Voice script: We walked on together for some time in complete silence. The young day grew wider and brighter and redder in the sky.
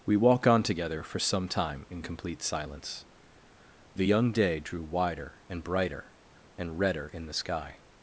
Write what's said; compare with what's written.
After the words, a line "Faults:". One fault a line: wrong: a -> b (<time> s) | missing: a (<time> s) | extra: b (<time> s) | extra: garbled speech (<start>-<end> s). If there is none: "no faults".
We walk on together for some time in complete silence. The young day drew wider and brighter and redder in the sky.
Faults:
wrong: walked -> walk (0.2 s)
wrong: grew -> drew (4.6 s)